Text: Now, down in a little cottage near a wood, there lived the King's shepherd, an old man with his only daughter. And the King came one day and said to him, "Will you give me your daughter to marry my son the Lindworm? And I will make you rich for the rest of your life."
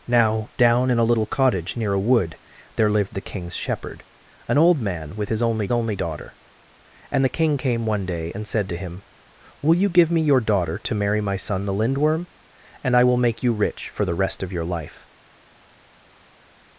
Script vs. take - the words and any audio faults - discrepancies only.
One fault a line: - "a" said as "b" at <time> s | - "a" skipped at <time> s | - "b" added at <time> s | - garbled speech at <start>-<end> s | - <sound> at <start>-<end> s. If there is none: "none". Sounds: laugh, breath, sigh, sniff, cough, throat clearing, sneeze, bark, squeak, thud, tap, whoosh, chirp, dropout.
- "only" added at 5.7 s